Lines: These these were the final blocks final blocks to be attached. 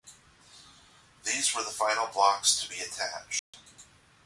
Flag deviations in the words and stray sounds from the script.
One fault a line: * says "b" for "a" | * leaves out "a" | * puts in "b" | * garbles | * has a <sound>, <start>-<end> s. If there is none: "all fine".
* leaves out "these"
* leaves out "final blocks"
* has a dropout, 3.4-3.5 s